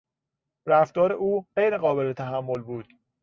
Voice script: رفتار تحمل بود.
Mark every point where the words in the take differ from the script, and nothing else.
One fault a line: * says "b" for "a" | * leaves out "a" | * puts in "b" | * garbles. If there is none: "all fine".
* puts in "او غیر قابل"